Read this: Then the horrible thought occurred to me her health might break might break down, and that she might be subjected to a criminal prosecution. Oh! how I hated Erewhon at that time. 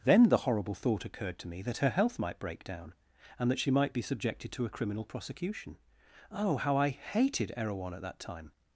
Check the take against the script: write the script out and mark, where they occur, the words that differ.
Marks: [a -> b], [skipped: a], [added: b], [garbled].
Then the horrible thought occurred to me [added: that] her health might break [skipped: might break] down, and that she might be subjected to a criminal prosecution. Oh! how I hated Erewhon at that time.